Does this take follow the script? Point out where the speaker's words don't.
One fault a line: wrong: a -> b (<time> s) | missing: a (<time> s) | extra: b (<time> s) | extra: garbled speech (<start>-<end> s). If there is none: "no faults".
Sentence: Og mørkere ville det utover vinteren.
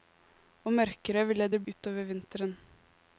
no faults